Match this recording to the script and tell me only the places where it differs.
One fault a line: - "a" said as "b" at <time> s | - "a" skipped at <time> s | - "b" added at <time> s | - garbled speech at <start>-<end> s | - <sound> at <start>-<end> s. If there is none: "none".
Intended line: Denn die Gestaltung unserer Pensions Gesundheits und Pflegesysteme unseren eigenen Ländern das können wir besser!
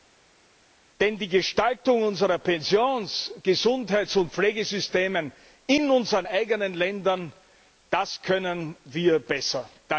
- "in" added at 5.7 s